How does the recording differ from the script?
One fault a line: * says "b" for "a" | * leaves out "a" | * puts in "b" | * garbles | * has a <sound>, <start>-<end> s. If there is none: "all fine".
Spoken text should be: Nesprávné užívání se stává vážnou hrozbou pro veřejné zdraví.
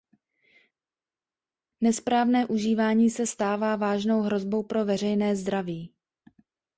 all fine